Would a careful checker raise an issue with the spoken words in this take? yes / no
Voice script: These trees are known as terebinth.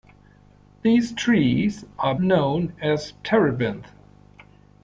no